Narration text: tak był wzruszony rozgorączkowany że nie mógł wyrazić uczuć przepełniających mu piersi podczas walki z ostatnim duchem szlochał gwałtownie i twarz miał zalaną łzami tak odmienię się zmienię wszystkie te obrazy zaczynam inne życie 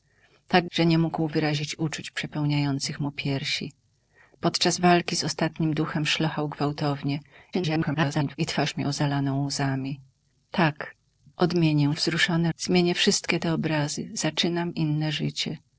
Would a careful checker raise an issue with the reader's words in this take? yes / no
yes